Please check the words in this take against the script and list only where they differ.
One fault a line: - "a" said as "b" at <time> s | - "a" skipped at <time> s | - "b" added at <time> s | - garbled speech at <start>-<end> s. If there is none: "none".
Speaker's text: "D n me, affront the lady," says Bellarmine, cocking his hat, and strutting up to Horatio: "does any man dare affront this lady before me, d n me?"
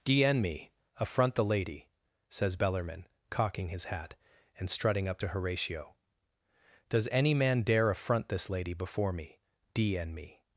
none